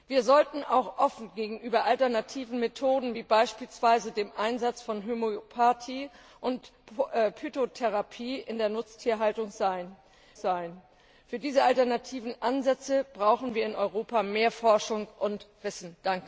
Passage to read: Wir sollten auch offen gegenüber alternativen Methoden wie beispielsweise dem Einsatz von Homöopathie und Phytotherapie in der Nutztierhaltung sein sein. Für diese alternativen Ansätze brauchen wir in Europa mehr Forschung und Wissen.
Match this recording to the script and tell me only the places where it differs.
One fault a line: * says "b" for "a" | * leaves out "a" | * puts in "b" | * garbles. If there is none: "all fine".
all fine